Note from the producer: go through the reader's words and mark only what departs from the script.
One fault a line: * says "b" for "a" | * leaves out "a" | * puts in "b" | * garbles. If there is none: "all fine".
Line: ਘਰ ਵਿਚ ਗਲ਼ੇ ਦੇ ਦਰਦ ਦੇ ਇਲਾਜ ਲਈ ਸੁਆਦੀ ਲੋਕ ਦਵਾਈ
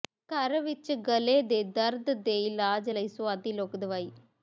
all fine